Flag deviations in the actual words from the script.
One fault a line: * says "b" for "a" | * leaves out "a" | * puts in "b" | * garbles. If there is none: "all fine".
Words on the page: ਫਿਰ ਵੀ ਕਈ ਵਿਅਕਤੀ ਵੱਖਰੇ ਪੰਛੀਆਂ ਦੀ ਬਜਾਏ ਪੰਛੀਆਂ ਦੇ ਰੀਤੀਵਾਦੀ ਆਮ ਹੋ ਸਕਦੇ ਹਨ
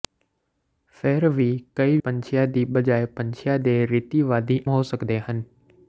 * leaves out "ਵਿਅਕਤੀ ਵੱਖਰੇ"
* leaves out "ਆਮ"